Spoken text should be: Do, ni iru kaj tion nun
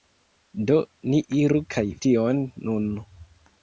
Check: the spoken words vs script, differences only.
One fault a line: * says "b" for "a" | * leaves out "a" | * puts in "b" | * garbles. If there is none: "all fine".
all fine